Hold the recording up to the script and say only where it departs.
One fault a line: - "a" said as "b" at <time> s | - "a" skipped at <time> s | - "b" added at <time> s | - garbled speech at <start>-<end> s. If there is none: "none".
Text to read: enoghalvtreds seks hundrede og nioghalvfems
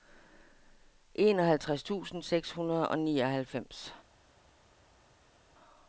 - "tusind" added at 1.8 s